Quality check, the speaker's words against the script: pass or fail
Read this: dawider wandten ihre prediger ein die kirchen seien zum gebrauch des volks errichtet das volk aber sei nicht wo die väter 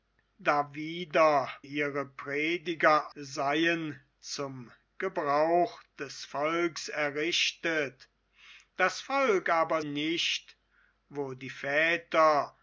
fail